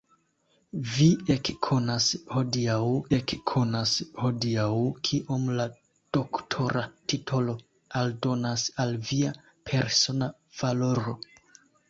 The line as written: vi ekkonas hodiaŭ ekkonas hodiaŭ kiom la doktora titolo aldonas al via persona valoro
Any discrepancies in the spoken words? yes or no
no